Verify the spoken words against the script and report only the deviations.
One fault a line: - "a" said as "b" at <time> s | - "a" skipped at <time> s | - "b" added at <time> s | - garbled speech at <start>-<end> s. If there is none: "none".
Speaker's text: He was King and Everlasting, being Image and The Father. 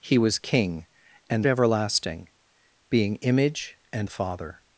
none